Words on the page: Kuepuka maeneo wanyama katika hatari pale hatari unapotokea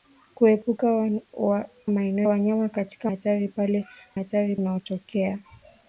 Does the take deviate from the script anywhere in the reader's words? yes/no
no